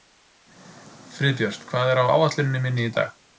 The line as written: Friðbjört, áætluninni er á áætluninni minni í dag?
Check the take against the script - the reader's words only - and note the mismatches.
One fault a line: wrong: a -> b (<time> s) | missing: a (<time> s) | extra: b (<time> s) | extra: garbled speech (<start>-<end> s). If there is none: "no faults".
wrong: áætluninni -> hvað (1.7 s)